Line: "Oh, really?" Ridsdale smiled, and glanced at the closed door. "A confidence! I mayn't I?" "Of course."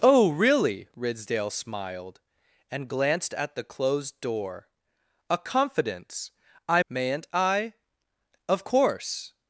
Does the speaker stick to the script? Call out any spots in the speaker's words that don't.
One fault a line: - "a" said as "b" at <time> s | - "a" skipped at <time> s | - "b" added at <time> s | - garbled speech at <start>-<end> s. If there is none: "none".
none